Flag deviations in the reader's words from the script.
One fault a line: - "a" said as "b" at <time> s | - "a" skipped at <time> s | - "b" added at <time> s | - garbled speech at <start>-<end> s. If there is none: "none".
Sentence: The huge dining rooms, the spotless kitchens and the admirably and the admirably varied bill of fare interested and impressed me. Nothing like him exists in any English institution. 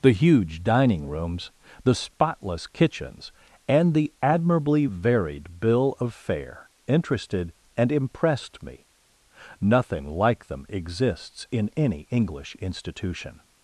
- "and the admirably" skipped at 4.9 s
- "him" said as "them" at 10.5 s